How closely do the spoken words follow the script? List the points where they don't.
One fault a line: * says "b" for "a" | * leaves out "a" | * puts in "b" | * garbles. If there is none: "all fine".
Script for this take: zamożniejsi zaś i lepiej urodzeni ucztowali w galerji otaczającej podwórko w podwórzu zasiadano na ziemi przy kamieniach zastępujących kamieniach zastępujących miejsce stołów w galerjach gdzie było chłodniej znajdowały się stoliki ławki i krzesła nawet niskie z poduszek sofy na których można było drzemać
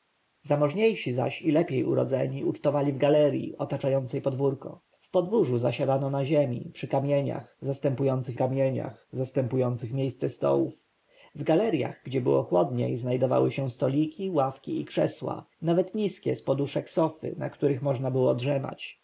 all fine